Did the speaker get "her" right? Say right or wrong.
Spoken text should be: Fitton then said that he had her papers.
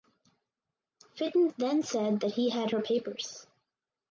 right